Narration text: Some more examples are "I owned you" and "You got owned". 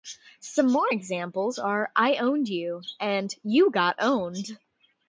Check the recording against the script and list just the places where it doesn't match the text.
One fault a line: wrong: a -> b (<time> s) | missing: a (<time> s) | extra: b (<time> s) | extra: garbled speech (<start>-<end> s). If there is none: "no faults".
no faults